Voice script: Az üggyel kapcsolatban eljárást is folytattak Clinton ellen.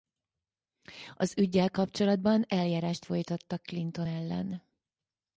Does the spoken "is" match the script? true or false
false